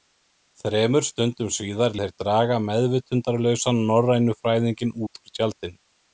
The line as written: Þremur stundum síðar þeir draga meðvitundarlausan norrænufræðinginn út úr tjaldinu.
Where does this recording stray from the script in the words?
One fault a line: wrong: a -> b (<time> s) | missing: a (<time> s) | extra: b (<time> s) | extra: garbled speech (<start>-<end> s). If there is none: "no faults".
no faults